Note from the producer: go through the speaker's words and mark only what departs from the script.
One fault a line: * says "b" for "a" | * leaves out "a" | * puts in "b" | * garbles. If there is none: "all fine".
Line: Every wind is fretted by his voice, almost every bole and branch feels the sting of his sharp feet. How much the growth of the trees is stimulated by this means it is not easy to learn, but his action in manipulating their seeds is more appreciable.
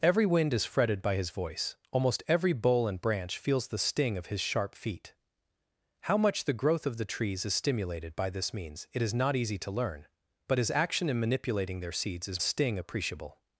* says "sting" for "more"